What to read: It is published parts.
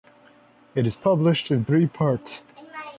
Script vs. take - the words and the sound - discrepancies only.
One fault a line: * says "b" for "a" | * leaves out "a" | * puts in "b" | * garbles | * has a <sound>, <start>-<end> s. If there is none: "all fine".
* puts in "in three"